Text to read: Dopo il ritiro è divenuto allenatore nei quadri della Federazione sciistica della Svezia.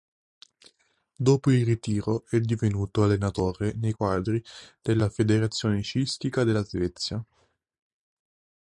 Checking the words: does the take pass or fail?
pass